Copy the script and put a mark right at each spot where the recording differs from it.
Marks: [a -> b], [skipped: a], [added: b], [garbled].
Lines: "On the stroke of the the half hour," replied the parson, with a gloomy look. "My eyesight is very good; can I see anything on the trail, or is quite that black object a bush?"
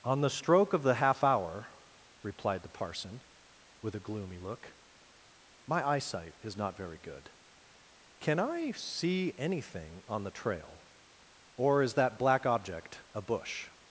"On the stroke of the [skipped: the] half hour," replied the parson, with a gloomy look. "My eyesight is [added: not] very good; can I see anything on the trail, or is [skipped: quite] that black object a bush?"